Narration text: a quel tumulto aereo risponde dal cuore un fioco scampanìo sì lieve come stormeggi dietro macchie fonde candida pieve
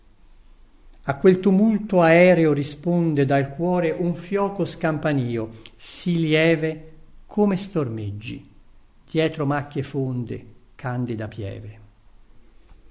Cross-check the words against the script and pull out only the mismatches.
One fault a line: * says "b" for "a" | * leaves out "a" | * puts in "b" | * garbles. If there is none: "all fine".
all fine